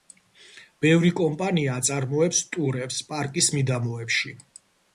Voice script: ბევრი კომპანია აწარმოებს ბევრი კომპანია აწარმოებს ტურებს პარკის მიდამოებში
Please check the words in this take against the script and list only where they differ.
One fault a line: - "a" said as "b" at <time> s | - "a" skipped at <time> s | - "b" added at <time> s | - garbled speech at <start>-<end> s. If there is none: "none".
- "ბევრი კომპანია აწარმოებს" skipped at 2.4 s